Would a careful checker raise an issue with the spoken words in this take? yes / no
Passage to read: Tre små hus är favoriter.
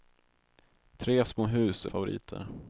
no